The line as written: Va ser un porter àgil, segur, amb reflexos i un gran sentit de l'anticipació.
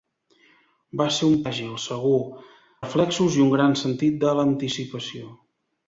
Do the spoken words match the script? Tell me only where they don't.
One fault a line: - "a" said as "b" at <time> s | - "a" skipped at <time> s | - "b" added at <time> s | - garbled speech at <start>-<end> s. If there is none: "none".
- "porter" skipped at 1.4 s
- "amb" skipped at 2.2 s